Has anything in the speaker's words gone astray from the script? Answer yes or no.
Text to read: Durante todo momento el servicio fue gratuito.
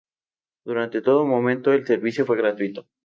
no